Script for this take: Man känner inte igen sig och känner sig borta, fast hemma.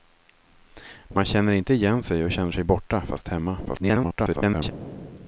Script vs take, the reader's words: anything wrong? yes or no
yes